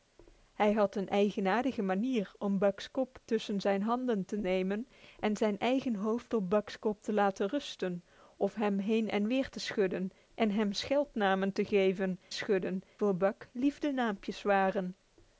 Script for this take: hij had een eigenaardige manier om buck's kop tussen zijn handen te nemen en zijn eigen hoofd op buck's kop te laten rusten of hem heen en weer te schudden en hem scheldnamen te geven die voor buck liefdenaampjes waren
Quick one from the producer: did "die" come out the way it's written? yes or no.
no